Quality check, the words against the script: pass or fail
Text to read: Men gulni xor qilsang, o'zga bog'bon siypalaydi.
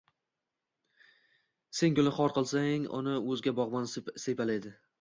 fail